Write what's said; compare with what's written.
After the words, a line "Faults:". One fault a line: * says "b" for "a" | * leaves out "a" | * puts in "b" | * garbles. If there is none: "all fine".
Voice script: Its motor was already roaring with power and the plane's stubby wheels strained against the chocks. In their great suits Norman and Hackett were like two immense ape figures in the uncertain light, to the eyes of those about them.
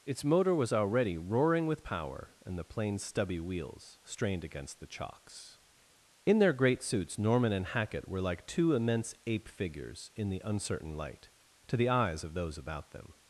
Its motor was already roaring with power and the plane's stubby wheels strained against the chocks. In their great suits Norman and Hackett were like two immense ape figures in the uncertain light, to the eyes of those about them.
Faults:
all fine